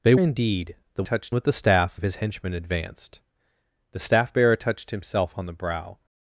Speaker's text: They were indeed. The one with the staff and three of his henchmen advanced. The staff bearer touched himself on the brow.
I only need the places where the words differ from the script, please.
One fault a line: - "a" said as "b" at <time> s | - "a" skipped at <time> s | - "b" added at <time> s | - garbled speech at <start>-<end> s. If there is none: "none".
- "were" skipped at 0.1 s
- "one" said as "touched" at 1.0 s
- "and three" skipped at 2.0 s